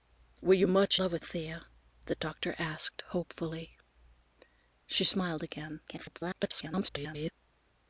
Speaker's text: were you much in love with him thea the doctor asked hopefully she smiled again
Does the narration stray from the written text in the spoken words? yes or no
yes